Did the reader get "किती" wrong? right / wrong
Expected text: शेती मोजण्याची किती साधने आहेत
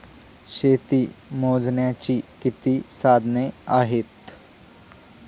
right